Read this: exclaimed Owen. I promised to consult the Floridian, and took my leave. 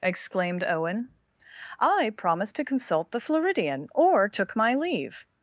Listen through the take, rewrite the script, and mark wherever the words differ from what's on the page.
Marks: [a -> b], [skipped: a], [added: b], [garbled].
exclaimed Owen. I promised to consult the Floridian, [and -> or] took my leave.